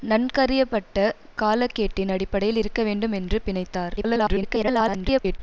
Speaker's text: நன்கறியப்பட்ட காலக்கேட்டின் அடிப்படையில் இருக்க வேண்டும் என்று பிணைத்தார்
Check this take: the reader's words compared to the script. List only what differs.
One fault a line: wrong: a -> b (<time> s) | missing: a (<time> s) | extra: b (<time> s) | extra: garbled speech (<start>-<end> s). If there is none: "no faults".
extra: garbled speech (4.0-5.4 s)